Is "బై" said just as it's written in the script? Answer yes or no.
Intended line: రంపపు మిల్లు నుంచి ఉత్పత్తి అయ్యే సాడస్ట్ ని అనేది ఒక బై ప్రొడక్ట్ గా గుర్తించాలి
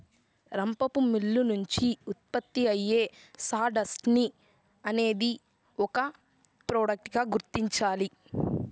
no